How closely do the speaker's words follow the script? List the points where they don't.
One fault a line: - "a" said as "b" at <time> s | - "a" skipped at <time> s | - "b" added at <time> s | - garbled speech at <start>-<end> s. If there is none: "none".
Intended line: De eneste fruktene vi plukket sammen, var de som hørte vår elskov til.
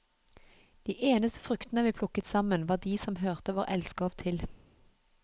none